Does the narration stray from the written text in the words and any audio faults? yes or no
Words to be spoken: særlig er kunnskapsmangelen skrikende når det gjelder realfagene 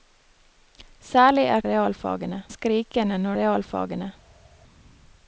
yes